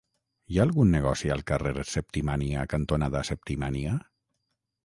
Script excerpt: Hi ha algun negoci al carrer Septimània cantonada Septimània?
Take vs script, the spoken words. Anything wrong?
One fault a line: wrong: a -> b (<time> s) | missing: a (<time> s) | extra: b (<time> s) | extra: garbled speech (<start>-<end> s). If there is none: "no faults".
no faults